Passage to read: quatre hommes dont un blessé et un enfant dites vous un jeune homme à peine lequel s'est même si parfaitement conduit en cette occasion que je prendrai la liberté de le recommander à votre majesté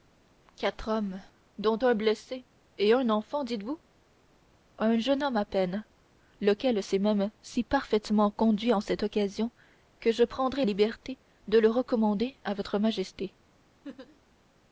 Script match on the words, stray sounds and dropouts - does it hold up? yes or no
no